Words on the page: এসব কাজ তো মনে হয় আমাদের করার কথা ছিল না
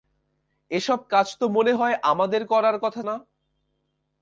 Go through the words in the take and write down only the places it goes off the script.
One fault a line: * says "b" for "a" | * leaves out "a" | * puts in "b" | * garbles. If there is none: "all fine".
* leaves out "ছিল"